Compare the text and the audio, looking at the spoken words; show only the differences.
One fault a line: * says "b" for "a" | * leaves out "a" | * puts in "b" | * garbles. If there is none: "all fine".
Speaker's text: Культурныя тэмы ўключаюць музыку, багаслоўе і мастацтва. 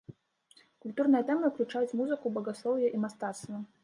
all fine